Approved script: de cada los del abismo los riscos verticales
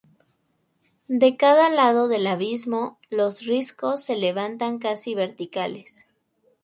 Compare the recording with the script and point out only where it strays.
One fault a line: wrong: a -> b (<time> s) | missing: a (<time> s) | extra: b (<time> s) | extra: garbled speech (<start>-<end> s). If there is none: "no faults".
wrong: los -> lado (1.7 s)
extra: se levantan casi (4.0 s)